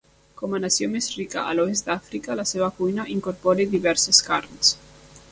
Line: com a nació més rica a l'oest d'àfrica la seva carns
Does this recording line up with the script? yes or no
no